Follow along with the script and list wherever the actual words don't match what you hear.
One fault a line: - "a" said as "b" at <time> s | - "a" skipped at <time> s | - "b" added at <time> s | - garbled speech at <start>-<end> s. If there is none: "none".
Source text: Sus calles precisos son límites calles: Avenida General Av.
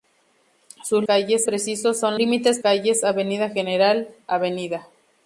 none